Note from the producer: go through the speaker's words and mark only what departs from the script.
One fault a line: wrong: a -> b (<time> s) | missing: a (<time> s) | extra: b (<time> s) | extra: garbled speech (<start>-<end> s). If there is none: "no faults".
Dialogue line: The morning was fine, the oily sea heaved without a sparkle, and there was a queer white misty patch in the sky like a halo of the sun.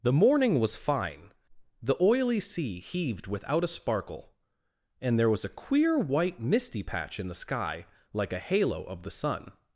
no faults